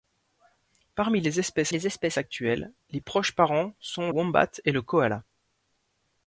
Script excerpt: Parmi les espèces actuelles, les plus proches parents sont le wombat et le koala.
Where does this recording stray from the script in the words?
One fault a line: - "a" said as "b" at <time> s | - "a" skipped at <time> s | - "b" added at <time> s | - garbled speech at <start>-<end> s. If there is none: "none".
- "les espèces" added at 1.7 s
- "plus" skipped at 3.0 s
- "le" skipped at 4.1 s